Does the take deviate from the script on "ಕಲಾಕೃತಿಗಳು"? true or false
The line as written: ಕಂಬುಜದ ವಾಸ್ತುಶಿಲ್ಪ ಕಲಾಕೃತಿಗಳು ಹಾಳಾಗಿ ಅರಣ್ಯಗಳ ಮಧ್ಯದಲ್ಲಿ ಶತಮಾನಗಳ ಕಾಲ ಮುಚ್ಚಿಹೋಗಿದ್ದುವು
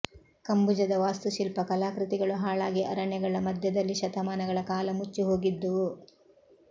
false